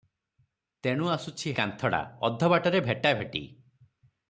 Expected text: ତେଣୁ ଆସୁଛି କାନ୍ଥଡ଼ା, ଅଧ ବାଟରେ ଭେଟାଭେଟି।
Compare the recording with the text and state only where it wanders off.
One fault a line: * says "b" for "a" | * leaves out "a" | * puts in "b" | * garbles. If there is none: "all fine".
all fine